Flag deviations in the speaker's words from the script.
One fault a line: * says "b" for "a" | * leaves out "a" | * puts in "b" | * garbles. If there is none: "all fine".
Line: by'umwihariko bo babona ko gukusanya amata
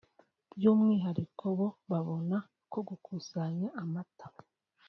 all fine